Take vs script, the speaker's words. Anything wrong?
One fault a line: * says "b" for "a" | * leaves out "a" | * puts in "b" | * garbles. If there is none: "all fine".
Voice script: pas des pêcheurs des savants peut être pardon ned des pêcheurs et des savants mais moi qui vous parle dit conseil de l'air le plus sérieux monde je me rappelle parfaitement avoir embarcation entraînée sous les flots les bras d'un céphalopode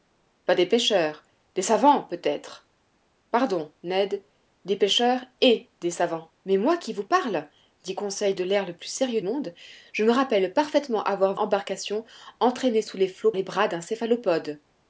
all fine